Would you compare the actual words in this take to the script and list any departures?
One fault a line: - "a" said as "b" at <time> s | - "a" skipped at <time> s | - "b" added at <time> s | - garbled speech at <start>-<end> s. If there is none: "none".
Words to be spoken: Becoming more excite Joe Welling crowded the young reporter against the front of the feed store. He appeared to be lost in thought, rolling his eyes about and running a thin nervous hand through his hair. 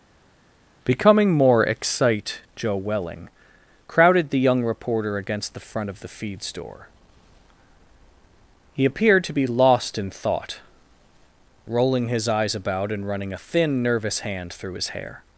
none